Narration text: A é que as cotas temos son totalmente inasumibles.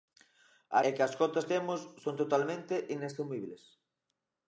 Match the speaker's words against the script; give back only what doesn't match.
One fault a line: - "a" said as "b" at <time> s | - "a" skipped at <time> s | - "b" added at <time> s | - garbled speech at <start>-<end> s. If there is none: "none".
none